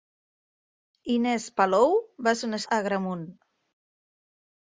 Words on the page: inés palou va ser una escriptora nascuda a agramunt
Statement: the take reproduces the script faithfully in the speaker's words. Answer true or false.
false